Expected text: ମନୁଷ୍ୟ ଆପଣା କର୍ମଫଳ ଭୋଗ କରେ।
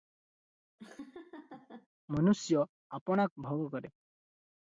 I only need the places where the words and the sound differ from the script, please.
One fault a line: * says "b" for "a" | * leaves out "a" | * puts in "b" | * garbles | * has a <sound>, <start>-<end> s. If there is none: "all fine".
* has a laugh, 0.8-1.9 s
* leaves out "କର୍ମଫଳ"